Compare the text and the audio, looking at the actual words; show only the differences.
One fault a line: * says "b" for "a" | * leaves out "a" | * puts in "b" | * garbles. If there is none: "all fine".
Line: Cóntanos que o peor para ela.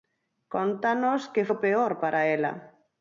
all fine